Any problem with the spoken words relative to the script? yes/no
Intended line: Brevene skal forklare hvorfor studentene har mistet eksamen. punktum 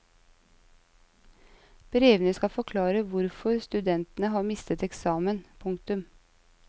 no